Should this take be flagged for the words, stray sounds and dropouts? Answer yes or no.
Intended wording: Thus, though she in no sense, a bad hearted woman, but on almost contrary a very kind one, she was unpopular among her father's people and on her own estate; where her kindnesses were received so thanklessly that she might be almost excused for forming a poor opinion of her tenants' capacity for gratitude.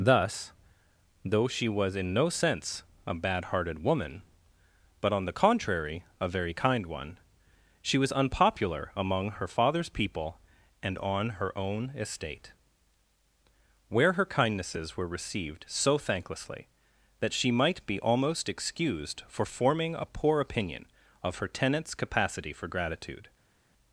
yes